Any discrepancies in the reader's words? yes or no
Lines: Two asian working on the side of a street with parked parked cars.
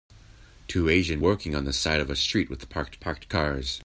no